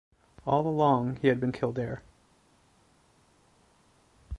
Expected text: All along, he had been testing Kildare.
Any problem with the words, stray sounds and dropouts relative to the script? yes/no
yes